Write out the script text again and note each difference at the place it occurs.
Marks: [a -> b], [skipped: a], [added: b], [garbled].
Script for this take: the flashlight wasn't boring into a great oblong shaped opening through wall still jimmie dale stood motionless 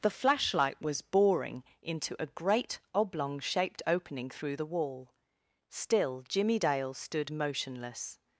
the flashlight [wasn't -> was] boring into a great oblong shaped opening through [added: the] wall still jimmie dale stood motionless